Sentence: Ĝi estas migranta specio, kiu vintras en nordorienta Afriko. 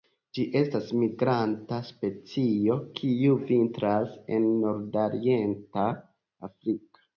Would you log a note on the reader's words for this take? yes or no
no